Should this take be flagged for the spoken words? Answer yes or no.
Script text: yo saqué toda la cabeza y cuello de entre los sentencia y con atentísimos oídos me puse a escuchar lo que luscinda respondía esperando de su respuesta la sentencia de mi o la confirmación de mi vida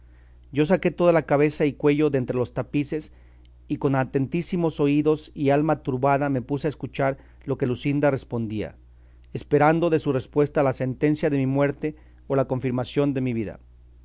yes